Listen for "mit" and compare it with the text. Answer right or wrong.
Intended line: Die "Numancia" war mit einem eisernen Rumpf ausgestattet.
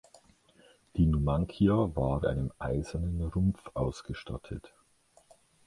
wrong